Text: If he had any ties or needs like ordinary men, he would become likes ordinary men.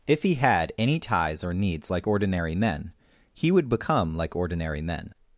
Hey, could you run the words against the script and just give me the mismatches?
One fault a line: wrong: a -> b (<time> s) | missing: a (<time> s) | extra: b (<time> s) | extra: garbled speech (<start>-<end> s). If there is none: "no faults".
wrong: likes -> like (4.1 s)